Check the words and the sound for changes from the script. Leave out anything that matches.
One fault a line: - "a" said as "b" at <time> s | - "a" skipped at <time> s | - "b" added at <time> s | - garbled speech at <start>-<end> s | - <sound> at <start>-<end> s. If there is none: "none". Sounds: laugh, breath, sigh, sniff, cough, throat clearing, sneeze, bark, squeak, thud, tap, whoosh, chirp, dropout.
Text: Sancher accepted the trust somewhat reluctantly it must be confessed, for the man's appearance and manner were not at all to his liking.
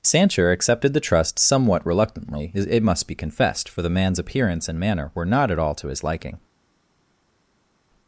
none